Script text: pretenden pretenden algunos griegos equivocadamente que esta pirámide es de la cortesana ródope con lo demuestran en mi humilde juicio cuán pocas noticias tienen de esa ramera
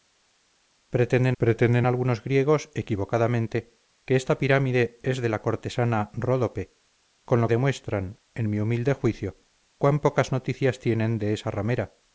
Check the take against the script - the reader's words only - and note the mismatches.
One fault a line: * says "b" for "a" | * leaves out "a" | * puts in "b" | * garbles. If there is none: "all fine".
all fine